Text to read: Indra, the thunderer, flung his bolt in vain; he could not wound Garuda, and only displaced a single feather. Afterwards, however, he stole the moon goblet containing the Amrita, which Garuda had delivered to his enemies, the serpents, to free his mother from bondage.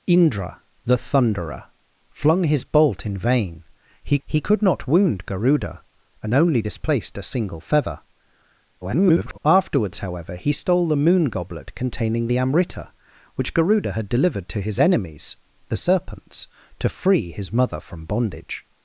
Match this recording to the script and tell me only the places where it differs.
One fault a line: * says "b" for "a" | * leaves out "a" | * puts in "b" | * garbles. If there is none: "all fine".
* puts in "he"
* garbles